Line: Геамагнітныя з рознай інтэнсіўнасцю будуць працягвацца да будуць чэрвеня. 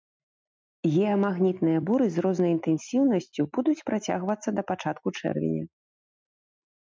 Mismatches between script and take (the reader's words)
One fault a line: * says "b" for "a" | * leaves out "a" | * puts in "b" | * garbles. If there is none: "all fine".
* puts in "буры"
* says "пачатку" for "будуць"